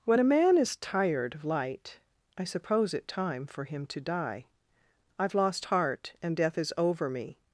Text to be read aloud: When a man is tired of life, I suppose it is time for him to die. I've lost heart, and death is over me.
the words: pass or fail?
fail